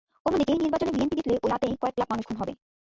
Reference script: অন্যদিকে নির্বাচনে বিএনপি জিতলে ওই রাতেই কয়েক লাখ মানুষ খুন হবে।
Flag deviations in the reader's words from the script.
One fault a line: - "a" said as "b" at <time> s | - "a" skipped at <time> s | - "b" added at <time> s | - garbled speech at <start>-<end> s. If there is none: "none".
none